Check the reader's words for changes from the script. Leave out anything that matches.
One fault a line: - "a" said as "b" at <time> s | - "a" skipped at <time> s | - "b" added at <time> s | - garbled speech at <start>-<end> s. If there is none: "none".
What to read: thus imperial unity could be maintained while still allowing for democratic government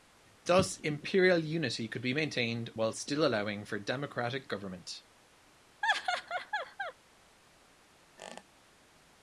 none